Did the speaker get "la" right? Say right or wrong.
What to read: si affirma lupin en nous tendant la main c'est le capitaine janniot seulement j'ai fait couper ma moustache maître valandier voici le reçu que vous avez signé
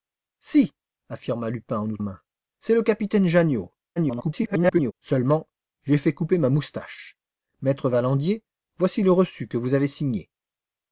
wrong